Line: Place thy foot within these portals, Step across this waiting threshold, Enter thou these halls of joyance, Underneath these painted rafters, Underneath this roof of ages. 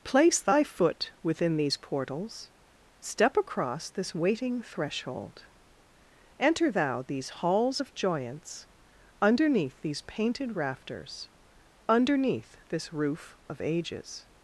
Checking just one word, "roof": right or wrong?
right